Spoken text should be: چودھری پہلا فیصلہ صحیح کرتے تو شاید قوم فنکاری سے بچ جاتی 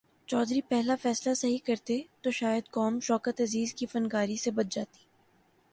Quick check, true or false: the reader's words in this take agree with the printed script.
false